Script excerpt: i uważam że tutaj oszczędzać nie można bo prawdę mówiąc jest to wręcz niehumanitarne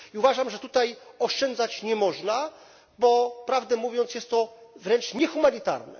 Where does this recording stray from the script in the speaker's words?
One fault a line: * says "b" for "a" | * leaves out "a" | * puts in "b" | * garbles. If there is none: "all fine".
all fine